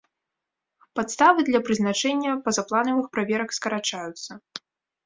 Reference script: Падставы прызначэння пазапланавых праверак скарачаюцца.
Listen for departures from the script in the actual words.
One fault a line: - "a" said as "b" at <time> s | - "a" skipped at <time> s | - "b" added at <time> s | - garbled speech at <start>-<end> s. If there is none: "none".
- "для" added at 1.5 s